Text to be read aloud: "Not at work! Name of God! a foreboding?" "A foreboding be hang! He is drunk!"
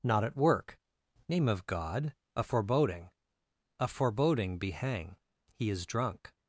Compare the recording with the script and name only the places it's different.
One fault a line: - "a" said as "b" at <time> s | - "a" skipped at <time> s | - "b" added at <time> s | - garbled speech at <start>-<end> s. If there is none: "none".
none